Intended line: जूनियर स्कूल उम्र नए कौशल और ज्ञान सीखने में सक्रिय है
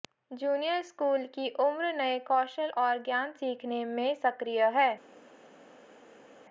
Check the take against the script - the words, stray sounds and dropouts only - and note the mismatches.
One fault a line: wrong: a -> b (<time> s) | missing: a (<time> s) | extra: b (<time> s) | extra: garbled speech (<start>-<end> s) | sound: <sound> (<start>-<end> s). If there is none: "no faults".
extra: की (1.4 s)